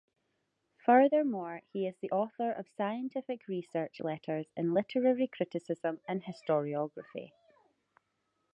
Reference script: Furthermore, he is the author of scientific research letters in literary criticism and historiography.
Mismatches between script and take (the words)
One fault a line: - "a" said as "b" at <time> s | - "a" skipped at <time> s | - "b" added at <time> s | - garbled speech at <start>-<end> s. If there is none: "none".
none